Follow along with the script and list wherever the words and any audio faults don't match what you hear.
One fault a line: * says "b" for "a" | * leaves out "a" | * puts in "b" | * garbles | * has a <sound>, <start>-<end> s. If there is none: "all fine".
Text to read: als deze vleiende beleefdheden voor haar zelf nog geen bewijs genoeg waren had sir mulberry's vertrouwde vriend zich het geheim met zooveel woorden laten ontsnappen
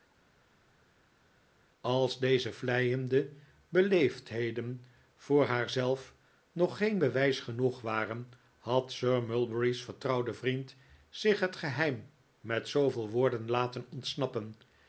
all fine